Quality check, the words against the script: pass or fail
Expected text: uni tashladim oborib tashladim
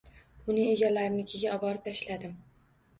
fail